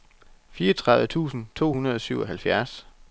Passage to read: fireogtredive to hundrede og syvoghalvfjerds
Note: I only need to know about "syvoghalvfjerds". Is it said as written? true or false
true